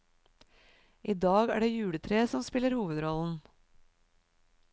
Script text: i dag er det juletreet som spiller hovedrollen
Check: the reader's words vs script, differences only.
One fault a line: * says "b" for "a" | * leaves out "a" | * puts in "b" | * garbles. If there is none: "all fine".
all fine